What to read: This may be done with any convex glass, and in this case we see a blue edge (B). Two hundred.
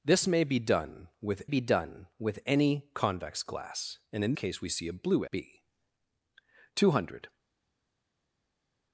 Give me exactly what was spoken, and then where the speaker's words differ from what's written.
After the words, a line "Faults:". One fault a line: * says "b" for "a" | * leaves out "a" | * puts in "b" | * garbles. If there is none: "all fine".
This may be done with be done with any convex glass, and in case we see a blue (B). Two hundred.
Faults:
* puts in "be done with"
* leaves out "this"
* leaves out "edge"